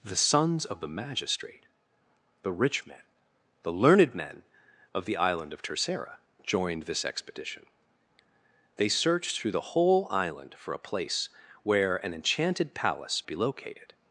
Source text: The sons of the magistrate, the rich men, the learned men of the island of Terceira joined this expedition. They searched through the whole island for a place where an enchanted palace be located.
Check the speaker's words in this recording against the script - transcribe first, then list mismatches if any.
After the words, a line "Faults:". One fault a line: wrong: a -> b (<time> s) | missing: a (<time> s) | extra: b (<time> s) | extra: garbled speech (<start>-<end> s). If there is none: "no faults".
The sons of the magistrate, the rich men, the learned men of the island of Terceira joined this expedition. They searched through the whole island for a place where an enchanted palace be located.
Faults:
no faults